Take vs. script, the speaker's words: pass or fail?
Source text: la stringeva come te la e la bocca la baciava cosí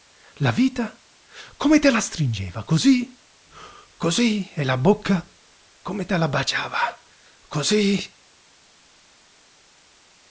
fail